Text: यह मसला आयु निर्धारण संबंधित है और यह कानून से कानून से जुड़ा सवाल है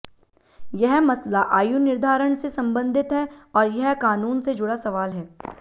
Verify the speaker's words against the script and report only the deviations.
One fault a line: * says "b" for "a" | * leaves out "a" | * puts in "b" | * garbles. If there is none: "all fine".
* puts in "से"
* leaves out "कानून से"